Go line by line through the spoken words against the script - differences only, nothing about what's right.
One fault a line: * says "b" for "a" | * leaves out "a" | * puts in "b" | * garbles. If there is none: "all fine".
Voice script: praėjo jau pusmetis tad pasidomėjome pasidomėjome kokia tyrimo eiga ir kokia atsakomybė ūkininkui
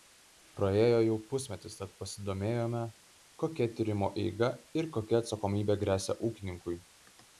* leaves out "pasidomėjome"
* puts in "gresia"